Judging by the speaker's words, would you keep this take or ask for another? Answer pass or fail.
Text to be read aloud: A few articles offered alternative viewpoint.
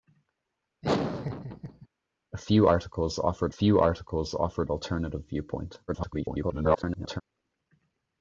fail